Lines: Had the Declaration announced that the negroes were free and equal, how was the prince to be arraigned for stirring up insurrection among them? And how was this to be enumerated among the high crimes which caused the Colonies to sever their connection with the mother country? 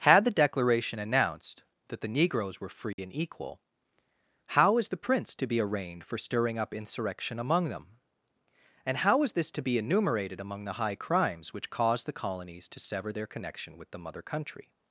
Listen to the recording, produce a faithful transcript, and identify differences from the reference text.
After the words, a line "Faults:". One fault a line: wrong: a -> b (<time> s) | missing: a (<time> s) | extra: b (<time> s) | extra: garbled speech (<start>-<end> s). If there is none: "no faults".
Had the Declaration announced that the negroes were free and equal, how is the prince to be arraigned for stirring up insurrection among them? And how is this to be enumerated among the high crimes which caused the Colonies to sever their connection with the mother country?
Faults:
wrong: was -> is (4.8 s)
wrong: was -> is (9.2 s)